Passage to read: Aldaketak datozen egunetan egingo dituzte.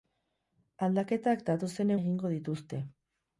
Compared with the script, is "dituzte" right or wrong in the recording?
right